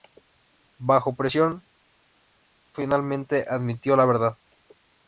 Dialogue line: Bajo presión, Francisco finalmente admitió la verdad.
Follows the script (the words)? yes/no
no